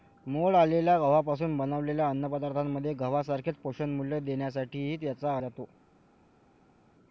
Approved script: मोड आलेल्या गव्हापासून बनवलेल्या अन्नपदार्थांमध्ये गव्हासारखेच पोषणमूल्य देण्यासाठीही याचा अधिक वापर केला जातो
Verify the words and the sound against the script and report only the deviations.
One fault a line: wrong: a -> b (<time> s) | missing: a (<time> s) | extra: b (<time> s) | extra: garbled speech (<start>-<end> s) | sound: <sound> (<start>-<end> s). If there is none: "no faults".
missing: अधिक वापर केला (5.4 s)